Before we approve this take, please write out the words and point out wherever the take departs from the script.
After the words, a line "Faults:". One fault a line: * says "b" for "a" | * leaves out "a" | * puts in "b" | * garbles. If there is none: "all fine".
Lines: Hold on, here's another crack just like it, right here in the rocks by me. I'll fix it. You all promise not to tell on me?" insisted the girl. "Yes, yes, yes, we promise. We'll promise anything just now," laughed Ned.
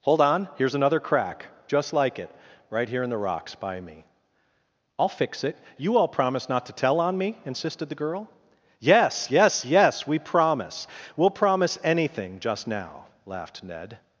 Hold on, here's another crack just like it, right here in the rocks by me. I'll fix it. You all promise not to tell on me?" insisted the girl. "Yes, yes, yes, we promise. We'll promise anything just now," laughed Ned.
Faults:
all fine